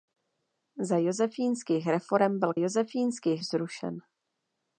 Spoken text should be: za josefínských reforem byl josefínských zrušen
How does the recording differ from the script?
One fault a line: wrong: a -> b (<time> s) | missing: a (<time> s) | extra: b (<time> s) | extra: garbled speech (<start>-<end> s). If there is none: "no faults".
no faults